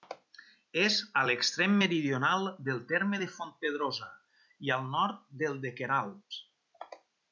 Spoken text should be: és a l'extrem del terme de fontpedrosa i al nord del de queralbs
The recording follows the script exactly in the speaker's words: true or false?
false